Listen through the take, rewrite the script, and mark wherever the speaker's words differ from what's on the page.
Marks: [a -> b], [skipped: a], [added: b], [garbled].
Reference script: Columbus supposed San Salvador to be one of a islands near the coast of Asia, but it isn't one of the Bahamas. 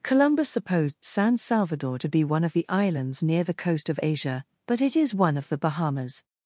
Columbus supposed San Salvador to be one of [a -> the] islands near the coast of Asia, but it [isn't -> is] one of the Bahamas.